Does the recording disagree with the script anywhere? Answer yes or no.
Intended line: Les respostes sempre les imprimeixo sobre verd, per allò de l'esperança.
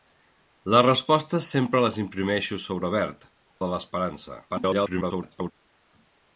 yes